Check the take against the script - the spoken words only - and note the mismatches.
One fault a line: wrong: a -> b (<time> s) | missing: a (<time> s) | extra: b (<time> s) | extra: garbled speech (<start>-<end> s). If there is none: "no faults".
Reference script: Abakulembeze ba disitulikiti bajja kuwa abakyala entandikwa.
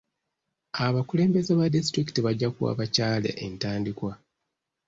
no faults